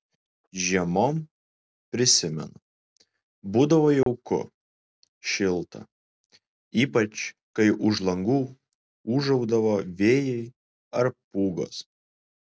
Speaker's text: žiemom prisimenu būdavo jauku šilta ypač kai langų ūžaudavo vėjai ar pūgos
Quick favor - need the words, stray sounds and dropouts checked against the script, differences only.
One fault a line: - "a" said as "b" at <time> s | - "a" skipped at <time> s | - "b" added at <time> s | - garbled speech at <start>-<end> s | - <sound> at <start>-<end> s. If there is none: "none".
- dropout at 4.0-4.1 s
- "už" added at 7.9 s